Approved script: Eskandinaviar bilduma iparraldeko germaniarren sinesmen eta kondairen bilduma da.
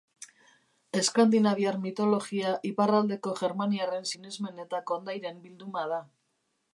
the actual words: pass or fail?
fail